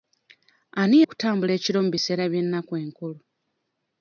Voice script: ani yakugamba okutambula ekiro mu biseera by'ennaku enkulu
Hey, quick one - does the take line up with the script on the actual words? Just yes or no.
no